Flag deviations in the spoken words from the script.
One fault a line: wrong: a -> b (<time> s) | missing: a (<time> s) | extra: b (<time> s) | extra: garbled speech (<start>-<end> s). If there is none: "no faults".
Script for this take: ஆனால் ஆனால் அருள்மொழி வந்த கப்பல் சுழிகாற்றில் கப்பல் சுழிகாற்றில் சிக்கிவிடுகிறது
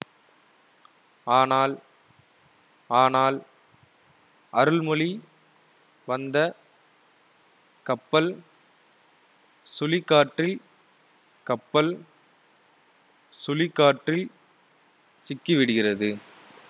no faults